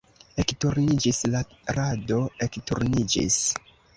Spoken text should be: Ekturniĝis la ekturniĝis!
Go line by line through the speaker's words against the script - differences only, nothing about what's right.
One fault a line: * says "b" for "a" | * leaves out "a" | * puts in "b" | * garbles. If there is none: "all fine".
* puts in "rado"